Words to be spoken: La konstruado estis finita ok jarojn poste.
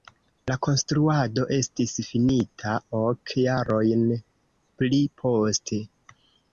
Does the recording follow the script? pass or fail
fail